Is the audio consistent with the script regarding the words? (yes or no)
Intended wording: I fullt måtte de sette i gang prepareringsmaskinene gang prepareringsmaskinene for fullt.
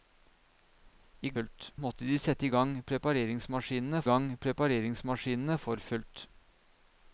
yes